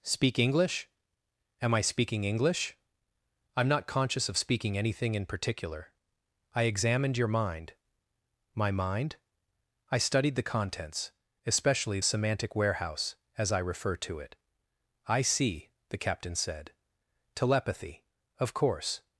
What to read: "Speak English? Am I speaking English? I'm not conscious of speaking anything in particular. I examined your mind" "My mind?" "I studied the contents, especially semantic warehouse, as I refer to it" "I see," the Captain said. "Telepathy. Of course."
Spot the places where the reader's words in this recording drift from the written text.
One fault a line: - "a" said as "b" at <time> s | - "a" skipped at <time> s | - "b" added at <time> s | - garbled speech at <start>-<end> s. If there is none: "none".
none